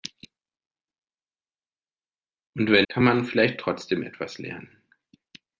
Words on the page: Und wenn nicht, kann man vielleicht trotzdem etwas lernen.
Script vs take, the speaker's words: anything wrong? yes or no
yes